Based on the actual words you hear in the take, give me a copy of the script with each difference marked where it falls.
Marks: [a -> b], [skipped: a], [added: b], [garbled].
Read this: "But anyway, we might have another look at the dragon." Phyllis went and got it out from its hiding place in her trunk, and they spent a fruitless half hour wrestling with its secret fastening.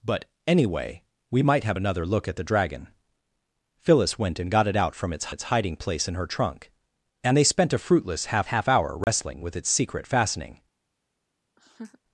"But anyway, we might have another look at the dragon." Phyllis went and got it out from its [added: its] hiding place in her trunk, and they spent a fruitless half [added: half] hour wrestling with its secret fastening.